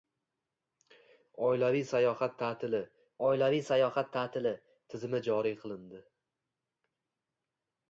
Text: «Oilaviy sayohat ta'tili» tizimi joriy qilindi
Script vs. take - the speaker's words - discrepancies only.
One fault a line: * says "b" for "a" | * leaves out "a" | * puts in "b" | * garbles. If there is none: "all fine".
* puts in "oilaviy sayohat ta'tili"